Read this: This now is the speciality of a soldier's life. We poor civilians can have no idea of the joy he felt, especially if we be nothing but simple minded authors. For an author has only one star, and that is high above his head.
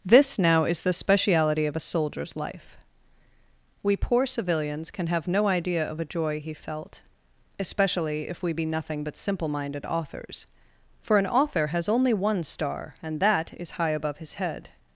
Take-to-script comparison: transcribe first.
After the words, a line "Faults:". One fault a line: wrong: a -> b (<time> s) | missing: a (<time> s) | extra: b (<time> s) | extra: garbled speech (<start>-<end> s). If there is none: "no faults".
This now is the speciality of a soldier's life. We poor civilians can have no idea of a joy he felt, especially if we be nothing but simple minded authors. For an author has only one star, and that is high above his head.
Faults:
wrong: the -> a (6.0 s)